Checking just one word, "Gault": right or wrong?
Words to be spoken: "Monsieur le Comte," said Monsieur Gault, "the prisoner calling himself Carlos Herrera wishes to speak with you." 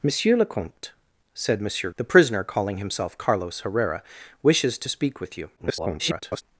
wrong